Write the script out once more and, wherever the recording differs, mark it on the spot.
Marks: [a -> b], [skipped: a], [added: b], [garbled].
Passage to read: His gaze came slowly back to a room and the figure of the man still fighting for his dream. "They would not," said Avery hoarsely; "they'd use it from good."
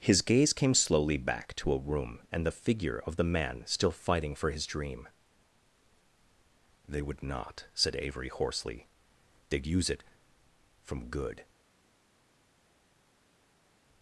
His gaze came slowly back to a room and the figure of the man still fighting for his dream. "They would not," said Avery hoarsely; "they'd use it from good."